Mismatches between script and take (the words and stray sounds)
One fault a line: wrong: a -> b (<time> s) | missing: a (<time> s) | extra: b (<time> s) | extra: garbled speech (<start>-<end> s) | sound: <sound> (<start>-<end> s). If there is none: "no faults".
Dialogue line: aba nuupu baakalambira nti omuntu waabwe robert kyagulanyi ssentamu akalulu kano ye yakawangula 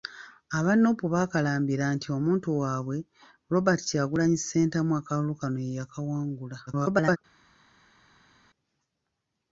extra: garbled speech (6.7-7.2 s)